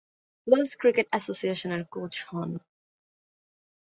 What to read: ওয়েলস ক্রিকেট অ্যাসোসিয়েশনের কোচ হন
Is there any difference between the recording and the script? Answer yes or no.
no